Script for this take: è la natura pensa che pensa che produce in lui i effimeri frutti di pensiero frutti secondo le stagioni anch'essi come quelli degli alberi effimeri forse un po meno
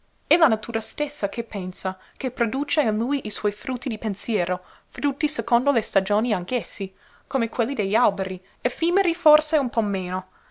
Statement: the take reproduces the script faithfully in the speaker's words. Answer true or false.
false